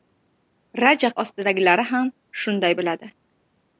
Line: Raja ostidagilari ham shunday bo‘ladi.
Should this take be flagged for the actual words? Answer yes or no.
no